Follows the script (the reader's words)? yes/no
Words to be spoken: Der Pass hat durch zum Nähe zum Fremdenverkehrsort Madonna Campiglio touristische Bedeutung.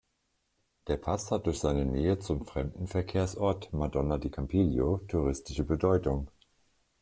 no